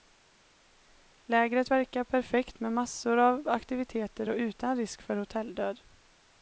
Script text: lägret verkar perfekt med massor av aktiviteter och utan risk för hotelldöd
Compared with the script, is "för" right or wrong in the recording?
right